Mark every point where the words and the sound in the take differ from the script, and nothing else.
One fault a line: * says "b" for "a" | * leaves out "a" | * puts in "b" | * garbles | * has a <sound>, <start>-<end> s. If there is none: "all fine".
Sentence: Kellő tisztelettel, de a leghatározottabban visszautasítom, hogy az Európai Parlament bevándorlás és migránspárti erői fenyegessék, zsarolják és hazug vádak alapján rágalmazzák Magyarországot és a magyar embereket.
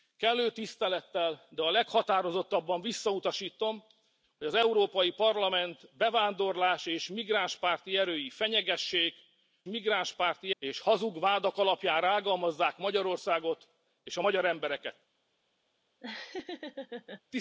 * says "migránspárti" for "zsarolják"
* has a laugh, 16.0-17.2 s